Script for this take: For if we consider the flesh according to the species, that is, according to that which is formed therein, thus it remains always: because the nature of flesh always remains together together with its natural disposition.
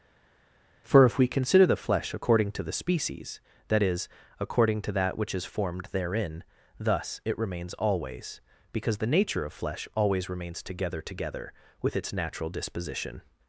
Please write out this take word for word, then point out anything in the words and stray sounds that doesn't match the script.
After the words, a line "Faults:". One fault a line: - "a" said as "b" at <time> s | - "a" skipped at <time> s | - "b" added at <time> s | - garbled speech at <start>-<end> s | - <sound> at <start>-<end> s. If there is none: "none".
For if we consider the flesh according to the species, that is, according to that which is formed therein, thus it remains always: because the nature of flesh always remains together together with its natural disposition.
Faults:
none